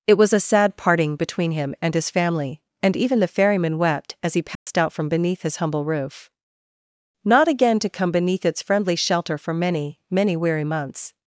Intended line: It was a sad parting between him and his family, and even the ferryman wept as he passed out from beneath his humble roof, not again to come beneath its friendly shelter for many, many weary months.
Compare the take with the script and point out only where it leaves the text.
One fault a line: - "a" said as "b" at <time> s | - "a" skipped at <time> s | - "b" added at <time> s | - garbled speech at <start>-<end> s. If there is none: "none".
none